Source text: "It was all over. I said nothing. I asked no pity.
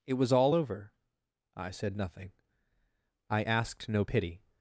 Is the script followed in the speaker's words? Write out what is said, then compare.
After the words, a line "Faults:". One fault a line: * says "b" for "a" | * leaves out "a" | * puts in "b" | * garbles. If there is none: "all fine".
"It was all over. I said nothing. I asked no pity.
Faults:
all fine